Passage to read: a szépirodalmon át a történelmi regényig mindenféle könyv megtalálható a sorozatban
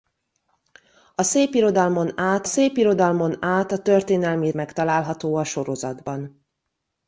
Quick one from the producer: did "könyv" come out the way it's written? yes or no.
no